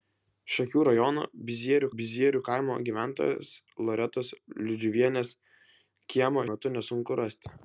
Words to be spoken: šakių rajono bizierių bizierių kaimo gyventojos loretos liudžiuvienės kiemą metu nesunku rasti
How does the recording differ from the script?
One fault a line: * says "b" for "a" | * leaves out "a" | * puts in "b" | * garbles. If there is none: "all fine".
all fine